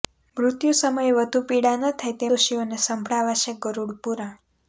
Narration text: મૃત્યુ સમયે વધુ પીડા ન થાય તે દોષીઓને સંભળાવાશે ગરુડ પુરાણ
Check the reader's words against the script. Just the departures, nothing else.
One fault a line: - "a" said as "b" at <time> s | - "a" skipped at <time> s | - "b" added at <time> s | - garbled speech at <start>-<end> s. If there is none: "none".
none